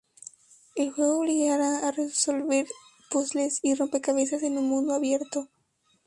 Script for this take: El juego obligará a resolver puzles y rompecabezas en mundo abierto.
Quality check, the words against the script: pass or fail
fail